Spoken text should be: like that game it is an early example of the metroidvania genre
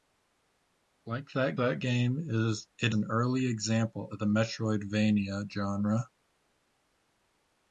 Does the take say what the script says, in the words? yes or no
no